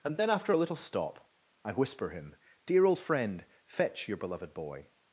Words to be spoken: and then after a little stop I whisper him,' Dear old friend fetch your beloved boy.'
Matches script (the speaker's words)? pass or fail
pass